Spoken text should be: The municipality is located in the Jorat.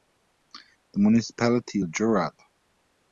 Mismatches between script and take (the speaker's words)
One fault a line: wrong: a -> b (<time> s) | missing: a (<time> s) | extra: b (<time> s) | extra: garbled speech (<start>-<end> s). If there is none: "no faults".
missing: is located in (1.8 s)